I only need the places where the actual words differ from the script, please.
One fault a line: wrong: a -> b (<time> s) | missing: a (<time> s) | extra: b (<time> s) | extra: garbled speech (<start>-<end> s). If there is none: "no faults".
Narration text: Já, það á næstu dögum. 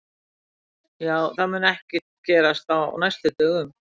extra: mun ekkert gerast (1.5 s)